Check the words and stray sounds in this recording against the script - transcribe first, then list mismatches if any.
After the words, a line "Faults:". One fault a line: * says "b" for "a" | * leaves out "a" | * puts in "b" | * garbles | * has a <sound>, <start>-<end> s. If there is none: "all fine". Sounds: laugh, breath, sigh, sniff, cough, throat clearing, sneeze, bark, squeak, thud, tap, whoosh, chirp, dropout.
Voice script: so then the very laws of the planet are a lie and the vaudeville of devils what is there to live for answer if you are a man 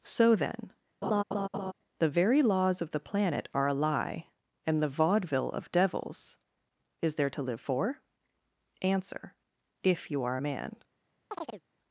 so then the very laws of the planet are a lie and the vaudeville of devils is there to live for answer if you are a man
Faults:
* has a laugh, 1.0-1.7 s
* leaves out "what"
* has a chirp, 11.3-11.6 s